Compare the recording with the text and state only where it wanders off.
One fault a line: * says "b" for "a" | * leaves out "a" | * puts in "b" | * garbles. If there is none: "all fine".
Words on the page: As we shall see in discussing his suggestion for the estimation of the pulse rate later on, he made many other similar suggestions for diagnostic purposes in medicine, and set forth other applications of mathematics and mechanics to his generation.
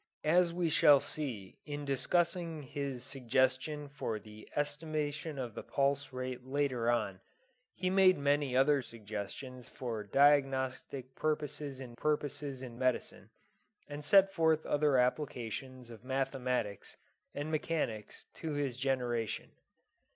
* leaves out "similar"
* puts in "purposes in"